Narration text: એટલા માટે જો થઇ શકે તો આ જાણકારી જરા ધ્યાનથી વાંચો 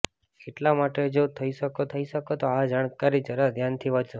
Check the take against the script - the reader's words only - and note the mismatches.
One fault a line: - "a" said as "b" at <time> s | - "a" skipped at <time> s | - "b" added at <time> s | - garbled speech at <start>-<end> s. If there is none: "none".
- "થઇ શકે" added at 1.9 s